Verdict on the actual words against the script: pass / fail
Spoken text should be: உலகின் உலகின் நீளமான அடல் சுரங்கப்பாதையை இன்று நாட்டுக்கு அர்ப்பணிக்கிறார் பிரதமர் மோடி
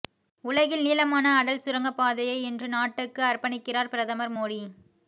fail